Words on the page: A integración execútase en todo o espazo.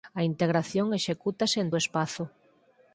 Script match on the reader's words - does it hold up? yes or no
no